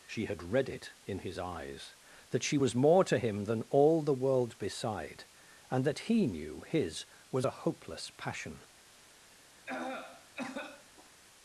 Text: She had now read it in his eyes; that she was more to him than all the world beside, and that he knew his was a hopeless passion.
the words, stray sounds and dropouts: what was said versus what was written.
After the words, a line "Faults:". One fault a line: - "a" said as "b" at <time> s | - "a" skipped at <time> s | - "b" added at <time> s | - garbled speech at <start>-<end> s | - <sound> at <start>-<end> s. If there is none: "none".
She had read it in his eyes; that she was more to him than all the world beside, and that he knew his was a hopeless passion.
Faults:
- "now" skipped at 0.4 s
- cough at 9.6-11.1 s